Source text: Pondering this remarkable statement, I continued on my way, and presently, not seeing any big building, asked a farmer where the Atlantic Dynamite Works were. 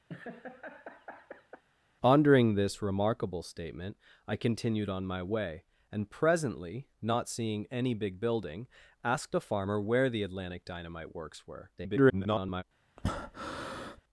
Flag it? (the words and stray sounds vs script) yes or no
yes